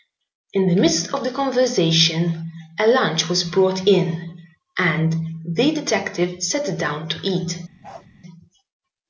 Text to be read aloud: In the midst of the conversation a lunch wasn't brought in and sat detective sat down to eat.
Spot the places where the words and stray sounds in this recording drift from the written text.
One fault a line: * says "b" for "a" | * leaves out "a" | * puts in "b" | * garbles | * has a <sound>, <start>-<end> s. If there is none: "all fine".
* says "was" for "wasn't"
* says "the" for "sat"
* has a bark, 7.8-8.1 s